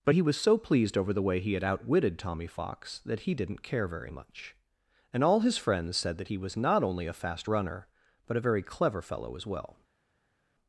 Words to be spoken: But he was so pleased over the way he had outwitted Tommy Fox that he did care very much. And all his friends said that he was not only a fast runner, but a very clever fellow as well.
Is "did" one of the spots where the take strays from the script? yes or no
yes